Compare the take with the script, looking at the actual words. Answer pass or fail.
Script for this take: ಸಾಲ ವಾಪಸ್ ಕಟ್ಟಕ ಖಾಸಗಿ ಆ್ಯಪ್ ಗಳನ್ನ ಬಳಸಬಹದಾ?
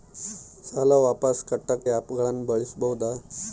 fail